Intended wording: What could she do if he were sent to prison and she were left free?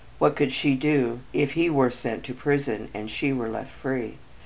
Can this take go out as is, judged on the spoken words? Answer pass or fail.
pass